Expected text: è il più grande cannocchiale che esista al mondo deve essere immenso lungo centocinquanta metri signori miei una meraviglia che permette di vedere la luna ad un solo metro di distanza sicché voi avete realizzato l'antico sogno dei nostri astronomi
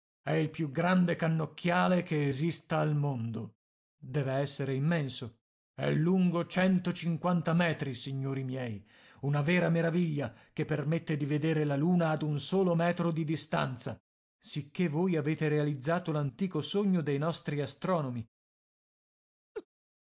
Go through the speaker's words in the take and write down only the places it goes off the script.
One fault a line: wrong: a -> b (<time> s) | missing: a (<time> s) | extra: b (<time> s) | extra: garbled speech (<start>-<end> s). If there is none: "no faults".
extra: è (5.7 s)
extra: vera (9.4 s)